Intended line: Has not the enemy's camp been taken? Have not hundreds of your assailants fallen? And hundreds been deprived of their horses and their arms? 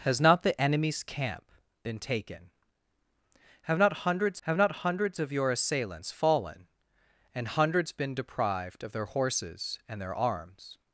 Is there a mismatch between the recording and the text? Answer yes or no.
yes